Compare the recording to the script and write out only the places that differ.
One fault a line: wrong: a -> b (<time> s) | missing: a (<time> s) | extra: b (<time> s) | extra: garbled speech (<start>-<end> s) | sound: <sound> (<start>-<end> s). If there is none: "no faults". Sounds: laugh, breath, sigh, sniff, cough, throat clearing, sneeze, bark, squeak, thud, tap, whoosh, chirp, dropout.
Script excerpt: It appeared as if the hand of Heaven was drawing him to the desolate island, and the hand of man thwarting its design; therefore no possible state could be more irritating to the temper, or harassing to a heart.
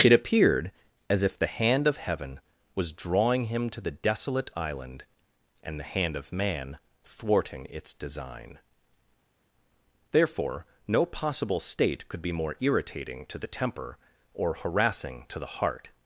wrong: a -> the (15.4 s)